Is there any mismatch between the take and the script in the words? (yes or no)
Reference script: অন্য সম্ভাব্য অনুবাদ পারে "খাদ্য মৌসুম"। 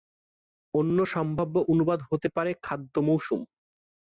yes